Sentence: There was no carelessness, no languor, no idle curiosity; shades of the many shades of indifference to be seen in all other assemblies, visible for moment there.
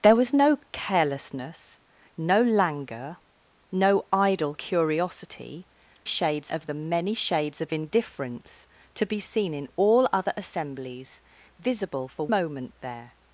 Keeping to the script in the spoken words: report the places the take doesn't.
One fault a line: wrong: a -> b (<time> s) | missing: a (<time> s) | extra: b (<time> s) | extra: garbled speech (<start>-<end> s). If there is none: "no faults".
no faults